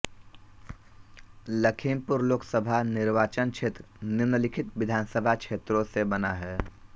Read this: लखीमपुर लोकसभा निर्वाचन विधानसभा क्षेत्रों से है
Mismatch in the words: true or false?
true